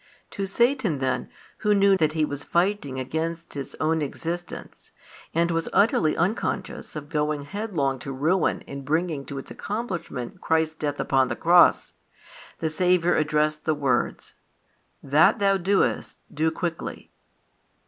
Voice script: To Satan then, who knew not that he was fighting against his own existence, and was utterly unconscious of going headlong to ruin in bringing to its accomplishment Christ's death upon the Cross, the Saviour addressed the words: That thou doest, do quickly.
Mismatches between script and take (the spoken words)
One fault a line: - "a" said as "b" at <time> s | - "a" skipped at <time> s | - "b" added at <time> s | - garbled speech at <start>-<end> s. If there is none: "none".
- "not" skipped at 1.9 s